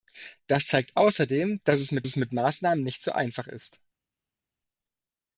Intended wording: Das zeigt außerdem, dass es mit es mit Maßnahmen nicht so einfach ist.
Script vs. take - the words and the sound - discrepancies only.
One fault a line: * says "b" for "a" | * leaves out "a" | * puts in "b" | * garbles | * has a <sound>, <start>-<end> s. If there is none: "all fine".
all fine